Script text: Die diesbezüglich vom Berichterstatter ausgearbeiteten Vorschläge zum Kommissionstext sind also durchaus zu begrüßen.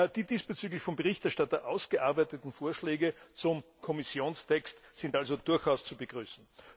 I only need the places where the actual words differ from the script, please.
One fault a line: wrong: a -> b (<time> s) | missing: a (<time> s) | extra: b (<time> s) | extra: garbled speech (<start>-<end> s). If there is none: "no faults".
no faults